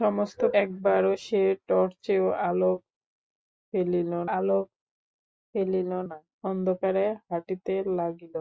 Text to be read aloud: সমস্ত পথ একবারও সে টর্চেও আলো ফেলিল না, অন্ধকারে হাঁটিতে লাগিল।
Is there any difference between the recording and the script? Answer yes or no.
yes